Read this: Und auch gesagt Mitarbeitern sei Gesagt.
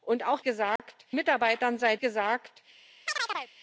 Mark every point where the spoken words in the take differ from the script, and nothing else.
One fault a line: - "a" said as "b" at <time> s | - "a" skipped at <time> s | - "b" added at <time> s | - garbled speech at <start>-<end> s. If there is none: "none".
none